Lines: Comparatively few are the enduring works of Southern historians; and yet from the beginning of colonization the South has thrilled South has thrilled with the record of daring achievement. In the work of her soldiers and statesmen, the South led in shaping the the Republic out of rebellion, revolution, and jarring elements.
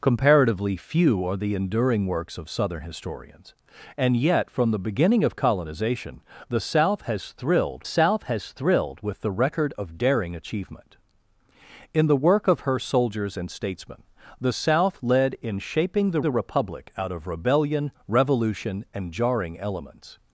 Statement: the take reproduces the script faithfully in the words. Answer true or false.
true